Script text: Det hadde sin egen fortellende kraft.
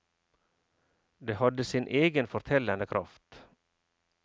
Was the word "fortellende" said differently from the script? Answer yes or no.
no